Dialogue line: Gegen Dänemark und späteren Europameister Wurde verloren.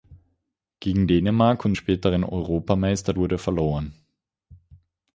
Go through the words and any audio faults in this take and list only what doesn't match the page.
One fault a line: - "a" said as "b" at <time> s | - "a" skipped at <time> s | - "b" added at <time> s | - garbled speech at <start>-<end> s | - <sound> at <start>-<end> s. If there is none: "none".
none